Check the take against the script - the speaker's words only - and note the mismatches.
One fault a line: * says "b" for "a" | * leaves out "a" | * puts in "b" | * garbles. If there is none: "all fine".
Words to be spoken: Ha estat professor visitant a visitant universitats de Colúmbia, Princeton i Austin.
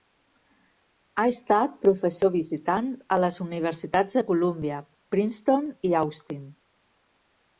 * says "les" for "visitant"